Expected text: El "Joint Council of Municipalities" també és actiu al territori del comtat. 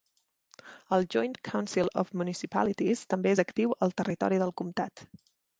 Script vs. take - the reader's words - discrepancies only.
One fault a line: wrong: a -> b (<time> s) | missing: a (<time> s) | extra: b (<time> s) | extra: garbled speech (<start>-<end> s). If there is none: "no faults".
no faults